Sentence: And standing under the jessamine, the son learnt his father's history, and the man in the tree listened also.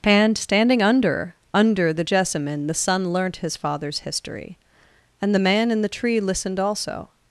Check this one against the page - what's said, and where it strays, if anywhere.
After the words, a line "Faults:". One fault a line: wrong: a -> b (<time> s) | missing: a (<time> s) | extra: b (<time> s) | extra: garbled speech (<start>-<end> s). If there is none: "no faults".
And standing under under the jessamine, the son learnt his father's history, and the man in the tree listened also.
Faults:
extra: under (1.5 s)